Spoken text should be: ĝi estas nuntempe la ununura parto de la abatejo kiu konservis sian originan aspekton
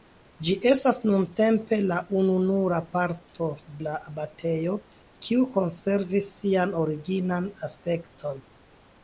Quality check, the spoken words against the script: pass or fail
fail